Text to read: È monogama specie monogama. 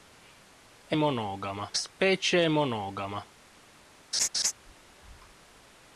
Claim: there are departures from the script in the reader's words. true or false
false